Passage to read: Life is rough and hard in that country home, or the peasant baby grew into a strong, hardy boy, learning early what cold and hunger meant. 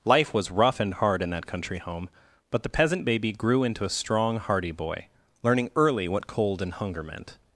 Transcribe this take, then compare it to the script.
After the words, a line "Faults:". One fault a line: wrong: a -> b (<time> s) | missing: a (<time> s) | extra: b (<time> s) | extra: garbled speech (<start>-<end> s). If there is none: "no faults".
Life was rough and hard in that country home, but the peasant baby grew into a strong, hardy boy, learning early what cold and hunger meant.
Faults:
wrong: is -> was (0.3 s)
wrong: or -> but (2.5 s)